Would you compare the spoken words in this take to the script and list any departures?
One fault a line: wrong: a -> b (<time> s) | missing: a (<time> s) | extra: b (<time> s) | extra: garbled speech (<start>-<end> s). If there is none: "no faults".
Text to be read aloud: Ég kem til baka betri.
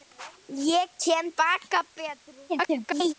missing: til (1.3 s)
extra: garbled speech (2.5-3.1 s)